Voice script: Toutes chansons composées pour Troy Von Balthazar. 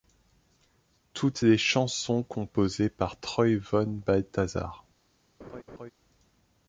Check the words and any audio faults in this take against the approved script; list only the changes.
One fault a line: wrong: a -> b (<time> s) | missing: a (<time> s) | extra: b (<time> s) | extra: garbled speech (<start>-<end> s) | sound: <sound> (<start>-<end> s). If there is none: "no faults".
extra: les (1.4 s)
wrong: pour -> par (2.9 s)
sound: laugh (5.4-5.9 s)